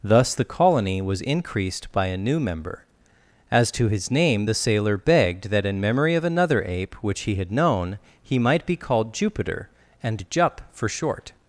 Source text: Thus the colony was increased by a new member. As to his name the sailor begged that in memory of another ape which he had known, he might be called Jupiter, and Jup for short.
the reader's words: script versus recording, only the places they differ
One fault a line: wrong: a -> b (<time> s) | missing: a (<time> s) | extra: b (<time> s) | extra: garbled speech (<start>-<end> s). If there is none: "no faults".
no faults